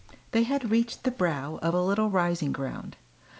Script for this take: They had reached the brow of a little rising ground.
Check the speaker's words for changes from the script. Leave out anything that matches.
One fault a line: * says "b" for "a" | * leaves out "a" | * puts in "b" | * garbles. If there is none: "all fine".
all fine